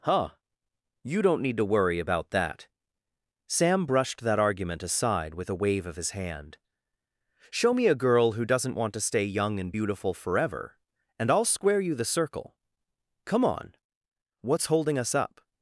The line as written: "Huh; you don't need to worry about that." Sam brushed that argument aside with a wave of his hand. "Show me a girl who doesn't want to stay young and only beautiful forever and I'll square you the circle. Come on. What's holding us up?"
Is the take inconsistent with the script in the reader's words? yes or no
yes